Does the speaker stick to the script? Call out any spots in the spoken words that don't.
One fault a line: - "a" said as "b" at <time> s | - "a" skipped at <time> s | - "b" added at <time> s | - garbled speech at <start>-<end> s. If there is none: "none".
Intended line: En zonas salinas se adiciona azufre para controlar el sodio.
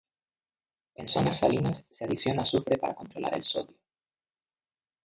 none